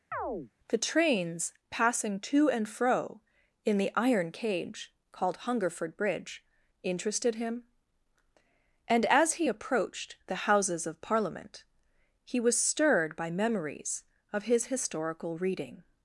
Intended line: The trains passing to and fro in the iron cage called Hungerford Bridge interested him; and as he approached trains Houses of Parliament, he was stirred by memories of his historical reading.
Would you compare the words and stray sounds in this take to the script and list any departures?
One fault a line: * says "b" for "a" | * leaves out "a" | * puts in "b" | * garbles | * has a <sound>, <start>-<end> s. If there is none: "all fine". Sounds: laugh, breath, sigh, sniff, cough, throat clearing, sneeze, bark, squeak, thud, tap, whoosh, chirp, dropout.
* has a chirp, 0.1-0.5 s
* says "the" for "trains"